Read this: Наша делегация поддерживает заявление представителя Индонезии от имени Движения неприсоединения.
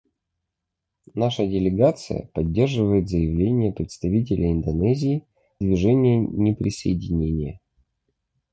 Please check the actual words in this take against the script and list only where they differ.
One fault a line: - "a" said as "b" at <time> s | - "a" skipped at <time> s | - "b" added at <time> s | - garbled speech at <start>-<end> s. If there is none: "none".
- "от имени" skipped at 5.3 s